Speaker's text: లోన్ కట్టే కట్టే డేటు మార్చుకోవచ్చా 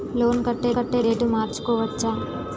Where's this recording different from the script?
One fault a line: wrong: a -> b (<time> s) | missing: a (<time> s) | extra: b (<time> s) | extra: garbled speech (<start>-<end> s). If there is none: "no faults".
no faults